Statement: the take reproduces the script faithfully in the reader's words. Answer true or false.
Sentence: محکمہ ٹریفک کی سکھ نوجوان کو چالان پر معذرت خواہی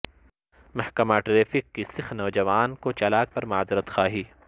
true